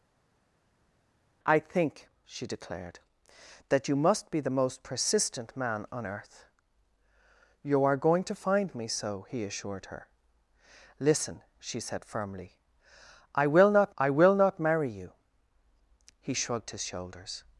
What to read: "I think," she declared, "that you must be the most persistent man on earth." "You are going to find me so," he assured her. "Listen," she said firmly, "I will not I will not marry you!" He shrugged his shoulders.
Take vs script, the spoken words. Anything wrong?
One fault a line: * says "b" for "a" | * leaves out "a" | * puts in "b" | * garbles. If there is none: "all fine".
all fine